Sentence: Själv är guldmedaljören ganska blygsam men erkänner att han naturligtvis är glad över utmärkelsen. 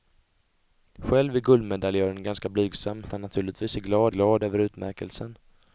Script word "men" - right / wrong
wrong